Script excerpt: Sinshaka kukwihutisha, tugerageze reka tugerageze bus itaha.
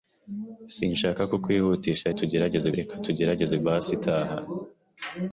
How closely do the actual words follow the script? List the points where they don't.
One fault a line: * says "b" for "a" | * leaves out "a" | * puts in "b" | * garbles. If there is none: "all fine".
all fine